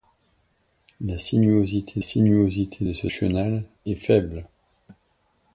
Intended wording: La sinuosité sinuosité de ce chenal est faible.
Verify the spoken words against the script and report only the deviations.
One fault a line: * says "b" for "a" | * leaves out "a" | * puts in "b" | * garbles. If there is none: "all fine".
all fine